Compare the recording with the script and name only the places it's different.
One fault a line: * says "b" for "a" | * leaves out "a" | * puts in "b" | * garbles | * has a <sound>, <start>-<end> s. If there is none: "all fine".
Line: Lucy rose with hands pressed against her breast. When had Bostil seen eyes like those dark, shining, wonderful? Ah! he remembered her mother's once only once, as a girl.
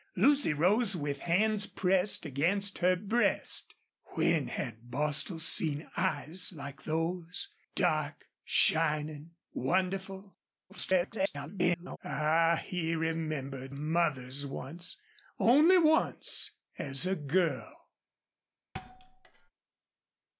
* garbles
* leaves out "her"
* has a thud, 18.7-19.5 s